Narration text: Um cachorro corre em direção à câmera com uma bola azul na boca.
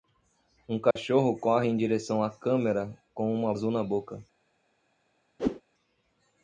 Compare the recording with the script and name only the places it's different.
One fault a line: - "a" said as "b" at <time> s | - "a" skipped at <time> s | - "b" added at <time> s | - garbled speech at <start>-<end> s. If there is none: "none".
- "bola" skipped at 3.5 s